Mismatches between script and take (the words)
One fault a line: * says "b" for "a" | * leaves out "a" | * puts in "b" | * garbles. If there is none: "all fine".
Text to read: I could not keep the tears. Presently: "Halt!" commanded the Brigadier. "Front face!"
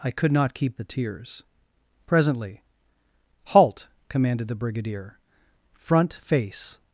all fine